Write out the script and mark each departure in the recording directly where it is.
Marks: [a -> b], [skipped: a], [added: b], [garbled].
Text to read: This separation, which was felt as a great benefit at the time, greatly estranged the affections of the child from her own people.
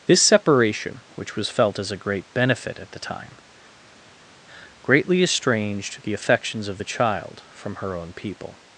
This separation, which was felt as a great benefit at the time, greatly estranged the affections of the child from her own people.